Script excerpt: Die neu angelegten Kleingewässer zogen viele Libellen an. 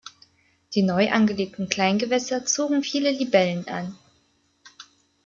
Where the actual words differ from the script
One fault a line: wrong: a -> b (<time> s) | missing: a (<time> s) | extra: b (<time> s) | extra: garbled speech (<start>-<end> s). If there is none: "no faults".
no faults